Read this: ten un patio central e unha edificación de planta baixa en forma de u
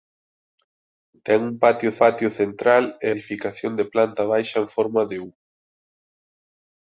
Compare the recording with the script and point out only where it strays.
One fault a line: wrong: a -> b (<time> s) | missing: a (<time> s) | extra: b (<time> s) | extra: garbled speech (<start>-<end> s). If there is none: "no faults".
extra: patio (2.0 s)
missing: unha (3.1 s)